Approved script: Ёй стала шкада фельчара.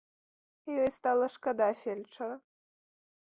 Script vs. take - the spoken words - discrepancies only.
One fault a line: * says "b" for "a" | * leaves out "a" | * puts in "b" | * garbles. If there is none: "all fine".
all fine